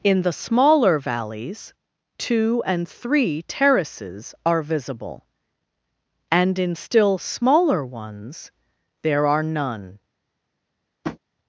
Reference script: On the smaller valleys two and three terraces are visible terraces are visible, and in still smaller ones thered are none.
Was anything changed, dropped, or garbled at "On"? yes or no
yes